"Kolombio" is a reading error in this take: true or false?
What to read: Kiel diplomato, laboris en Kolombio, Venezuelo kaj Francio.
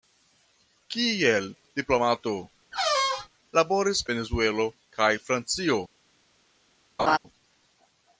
true